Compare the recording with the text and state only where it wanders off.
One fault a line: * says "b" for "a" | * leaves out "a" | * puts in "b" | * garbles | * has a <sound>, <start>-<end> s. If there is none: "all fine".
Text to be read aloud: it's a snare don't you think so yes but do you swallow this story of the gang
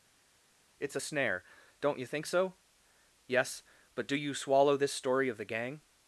all fine